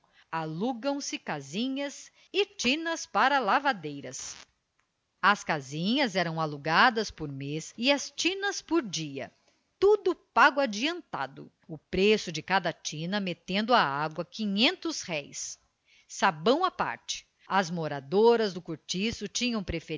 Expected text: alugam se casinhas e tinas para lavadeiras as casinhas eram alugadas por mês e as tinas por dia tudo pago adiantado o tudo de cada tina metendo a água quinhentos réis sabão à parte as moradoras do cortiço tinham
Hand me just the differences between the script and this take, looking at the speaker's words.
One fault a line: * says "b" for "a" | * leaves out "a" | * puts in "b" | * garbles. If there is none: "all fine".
* says "preço" for "tudo"